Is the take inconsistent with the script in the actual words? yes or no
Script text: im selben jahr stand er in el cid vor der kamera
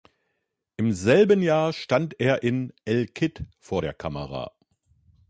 no